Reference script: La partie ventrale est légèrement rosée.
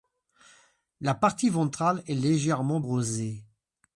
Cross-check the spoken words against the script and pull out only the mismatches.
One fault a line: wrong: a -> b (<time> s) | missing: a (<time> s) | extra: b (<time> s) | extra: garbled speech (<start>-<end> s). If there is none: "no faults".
no faults